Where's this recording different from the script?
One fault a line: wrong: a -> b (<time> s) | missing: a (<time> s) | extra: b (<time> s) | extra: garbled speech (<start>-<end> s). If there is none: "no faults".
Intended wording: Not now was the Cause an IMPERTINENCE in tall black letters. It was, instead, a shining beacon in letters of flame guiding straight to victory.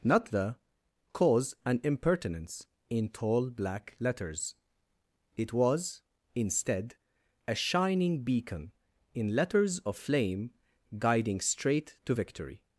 missing: now was (0.3 s)